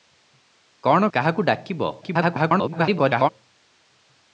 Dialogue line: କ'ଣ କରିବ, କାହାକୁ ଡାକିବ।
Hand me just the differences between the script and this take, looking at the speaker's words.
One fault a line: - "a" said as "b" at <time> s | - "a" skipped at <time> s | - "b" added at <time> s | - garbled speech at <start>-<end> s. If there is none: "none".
- "କରିବ" skipped at 1.1 s
- garbled speech at 2.0-3.3 s